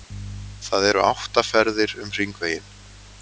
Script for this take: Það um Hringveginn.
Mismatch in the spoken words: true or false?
true